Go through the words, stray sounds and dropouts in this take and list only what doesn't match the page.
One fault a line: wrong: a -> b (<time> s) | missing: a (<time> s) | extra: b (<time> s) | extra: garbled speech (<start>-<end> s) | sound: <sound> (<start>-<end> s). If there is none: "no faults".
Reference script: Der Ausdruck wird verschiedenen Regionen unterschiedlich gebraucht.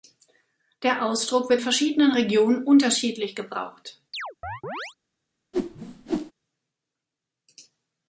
sound: chirp (4.1-4.9 s)
sound: whoosh (5.5-6.3 s)